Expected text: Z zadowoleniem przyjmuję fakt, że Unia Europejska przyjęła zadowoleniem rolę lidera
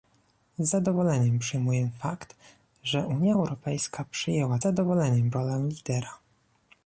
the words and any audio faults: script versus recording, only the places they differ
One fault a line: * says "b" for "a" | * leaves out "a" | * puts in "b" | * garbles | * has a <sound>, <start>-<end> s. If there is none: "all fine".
all fine